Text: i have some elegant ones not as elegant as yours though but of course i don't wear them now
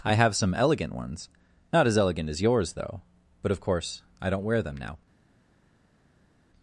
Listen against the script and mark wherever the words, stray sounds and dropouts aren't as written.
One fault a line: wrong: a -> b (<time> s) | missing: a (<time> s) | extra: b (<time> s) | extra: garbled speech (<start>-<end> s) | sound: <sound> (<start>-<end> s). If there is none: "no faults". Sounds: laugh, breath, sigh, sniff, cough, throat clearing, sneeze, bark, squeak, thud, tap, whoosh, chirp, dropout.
no faults